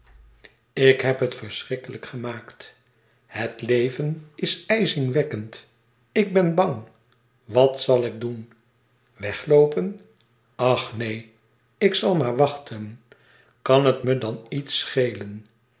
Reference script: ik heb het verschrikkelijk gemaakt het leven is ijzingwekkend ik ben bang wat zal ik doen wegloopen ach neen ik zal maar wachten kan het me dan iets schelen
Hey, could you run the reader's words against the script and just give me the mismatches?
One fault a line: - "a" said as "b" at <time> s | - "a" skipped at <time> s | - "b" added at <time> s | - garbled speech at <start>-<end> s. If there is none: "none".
none